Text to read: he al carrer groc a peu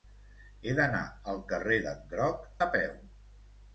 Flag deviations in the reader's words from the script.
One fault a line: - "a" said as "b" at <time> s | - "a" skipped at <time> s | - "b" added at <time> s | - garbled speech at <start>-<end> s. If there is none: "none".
- "d'anar" added at 0.8 s
- "d'en" added at 1.9 s